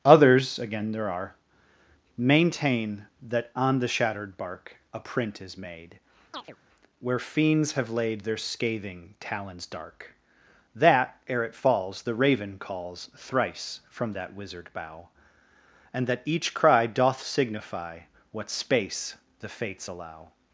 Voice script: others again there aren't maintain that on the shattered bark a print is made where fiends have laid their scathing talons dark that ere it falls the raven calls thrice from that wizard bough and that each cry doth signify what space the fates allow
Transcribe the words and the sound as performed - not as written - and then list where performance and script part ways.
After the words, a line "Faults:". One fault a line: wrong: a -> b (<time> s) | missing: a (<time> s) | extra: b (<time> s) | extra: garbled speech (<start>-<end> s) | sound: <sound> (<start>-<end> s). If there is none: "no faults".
others again there are maintain that on the shattered bark a print is made where fiends have laid their scathing talons dark that ere it falls the raven calls thrice from that wizard bough and that each cry doth signify what space the fates allow
Faults:
wrong: aren't -> are (1.1 s)
sound: chirp (6.3-6.6 s)